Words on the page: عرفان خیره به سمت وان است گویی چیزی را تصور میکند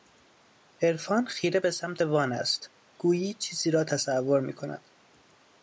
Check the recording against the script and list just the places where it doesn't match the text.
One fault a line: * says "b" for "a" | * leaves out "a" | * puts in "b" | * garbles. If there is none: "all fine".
all fine